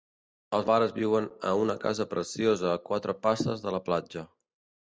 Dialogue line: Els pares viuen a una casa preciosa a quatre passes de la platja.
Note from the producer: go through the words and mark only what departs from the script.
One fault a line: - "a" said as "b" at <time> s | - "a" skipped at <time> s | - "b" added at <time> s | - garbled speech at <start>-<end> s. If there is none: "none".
none